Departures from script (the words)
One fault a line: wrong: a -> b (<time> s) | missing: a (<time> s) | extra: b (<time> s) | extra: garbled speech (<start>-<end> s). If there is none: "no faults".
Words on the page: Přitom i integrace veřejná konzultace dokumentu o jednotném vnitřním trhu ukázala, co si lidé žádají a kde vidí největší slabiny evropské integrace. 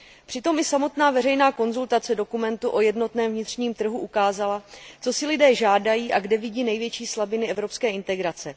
wrong: integrace -> samotná (0.6 s)